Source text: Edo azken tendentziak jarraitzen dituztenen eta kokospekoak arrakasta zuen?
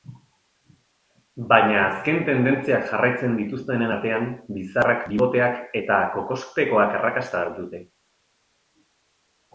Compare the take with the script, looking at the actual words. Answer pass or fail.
fail